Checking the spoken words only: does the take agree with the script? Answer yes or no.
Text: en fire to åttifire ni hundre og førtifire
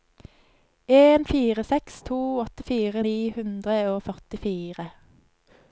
no